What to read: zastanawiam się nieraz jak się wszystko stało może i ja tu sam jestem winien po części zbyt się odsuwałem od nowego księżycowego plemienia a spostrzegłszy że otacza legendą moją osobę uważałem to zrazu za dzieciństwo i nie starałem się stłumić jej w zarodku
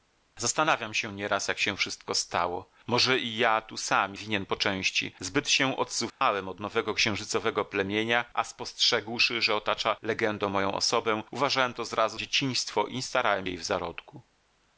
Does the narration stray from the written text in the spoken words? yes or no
yes